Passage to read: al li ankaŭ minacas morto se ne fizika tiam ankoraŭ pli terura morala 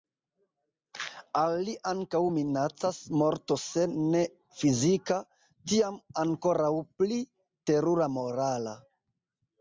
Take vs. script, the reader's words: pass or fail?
pass